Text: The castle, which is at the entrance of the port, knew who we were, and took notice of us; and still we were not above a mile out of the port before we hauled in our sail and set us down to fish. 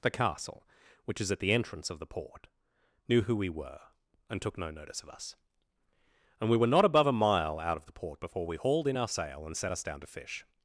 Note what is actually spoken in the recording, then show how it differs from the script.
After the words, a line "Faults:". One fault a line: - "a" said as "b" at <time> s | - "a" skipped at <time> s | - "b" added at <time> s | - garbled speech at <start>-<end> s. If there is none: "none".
The castle, which is at the entrance of the port, knew who we were, and took no notice of us; and we were not above a mile out of the port before we hauled in our sail and set us down to fish.
Faults:
- "no" added at 4.6 s
- "still" skipped at 6.5 s